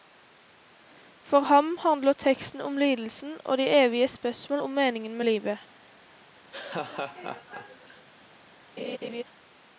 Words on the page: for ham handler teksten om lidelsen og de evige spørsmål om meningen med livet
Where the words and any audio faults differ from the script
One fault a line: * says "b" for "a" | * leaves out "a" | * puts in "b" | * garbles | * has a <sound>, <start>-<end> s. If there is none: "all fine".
* has a laugh, 6.5-8.1 s
* has a laugh, 8.8-9.2 s